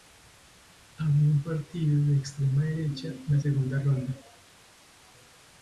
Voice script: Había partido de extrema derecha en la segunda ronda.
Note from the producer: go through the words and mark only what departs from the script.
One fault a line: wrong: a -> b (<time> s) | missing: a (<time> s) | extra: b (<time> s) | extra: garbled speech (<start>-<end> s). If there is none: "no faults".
extra: un (1.3 s)